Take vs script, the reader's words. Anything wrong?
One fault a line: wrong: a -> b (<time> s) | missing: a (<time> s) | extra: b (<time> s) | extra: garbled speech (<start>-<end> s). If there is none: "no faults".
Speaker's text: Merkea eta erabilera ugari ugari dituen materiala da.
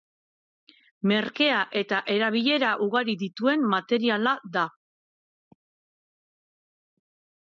missing: ugari (3.1 s)